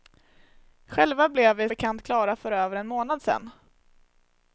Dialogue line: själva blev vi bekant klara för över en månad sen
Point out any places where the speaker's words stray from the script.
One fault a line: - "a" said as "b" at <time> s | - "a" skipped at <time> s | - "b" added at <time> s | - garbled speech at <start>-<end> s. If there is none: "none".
none